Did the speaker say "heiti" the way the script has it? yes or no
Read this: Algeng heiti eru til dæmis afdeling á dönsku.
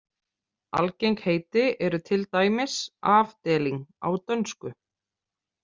yes